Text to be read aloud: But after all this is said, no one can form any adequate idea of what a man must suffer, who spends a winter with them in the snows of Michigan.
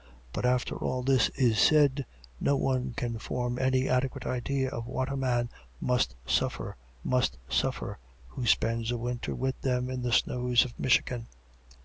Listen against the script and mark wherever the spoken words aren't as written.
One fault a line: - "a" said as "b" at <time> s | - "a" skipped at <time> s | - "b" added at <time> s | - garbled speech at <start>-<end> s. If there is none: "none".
- "must suffer" added at 7.0 s